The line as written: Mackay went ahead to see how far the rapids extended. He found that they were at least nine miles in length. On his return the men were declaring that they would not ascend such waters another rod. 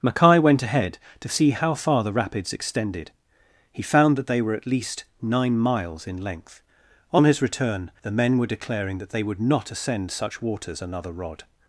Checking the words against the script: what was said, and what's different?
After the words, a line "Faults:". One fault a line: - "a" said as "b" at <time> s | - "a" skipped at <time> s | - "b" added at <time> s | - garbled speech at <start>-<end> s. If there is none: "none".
Mackay went ahead to see how far the rapids extended. He found that they were at least nine miles in length. On his return the men were declaring that they would not ascend such waters another rod.
Faults:
none